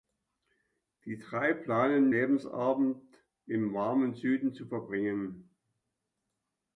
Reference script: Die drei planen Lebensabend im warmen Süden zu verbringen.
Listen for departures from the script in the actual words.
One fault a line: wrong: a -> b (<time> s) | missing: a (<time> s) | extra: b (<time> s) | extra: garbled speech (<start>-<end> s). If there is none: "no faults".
no faults